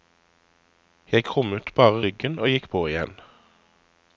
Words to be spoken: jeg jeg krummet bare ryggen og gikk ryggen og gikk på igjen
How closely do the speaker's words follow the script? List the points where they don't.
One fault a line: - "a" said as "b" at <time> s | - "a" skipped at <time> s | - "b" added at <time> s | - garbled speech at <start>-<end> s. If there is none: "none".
- "jeg" skipped at 1.2 s
- "ryggen og gikk" skipped at 2.7 s